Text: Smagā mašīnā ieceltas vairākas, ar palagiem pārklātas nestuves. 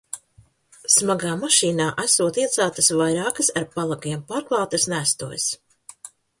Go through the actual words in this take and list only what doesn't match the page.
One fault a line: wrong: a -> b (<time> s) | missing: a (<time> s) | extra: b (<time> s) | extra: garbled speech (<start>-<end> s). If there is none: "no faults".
extra: esot (2.0 s)